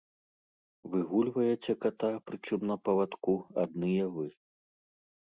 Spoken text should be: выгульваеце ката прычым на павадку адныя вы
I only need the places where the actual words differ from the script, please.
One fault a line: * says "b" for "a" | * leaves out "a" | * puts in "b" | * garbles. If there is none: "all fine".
all fine